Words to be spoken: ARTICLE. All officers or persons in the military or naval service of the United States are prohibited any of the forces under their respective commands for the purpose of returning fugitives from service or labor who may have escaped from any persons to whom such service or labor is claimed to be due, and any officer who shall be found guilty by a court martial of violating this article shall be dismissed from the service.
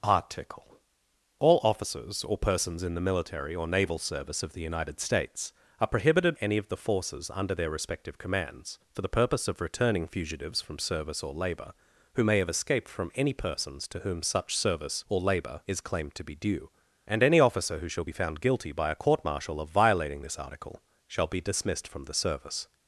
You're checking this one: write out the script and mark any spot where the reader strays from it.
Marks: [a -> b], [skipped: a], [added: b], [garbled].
ARTICLE. All officers or persons in the military or naval service of the United States are prohibited any of the forces under their respective commands for the purpose of returning fugitives from service or labor who may have escaped from any persons to whom such service or labor is claimed to be due, and any officer who shall be found guilty by a court martial of violating this article shall be dismissed from the service.